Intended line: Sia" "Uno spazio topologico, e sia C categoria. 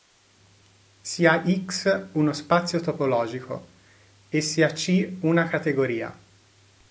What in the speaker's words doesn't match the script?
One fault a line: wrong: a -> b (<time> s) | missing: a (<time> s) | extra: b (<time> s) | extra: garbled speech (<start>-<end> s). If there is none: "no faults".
extra: X (1.4 s)
extra: una (5.2 s)